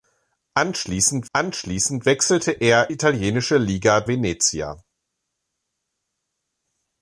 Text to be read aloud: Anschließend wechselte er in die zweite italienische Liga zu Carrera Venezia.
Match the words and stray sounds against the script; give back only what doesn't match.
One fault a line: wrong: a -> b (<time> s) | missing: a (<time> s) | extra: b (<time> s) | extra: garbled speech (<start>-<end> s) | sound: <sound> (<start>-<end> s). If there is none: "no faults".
extra: anschließend (1.3 s)
missing: in die zweite (2.9 s)
missing: zu Carrera (4.1 s)